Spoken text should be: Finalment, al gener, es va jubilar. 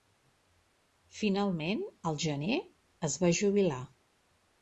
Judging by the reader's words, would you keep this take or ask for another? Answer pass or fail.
pass